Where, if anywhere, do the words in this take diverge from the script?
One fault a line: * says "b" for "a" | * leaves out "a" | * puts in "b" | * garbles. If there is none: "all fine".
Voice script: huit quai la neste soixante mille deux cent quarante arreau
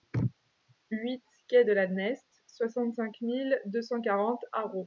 * puts in "de"
* puts in "cinq"